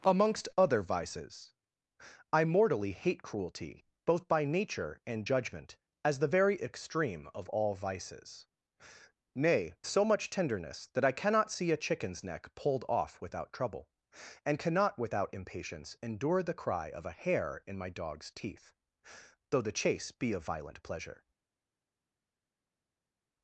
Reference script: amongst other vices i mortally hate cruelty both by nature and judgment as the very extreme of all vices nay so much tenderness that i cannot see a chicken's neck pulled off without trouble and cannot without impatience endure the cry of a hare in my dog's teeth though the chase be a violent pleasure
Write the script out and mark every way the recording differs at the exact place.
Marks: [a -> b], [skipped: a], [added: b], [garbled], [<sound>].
amongst other vices i mortally hate cruelty both by nature and judgment as the very extreme of all vices nay so much tenderness that i cannot see a chicken's neck pulled off without trouble and cannot without impatience endure the cry of a hare in my dog's teeth though the chase be a violent pleasure